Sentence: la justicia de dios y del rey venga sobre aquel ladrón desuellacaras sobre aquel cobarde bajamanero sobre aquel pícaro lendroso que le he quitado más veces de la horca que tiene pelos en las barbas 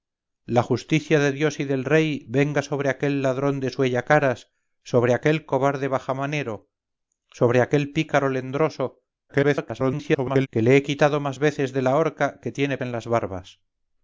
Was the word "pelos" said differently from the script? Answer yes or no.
yes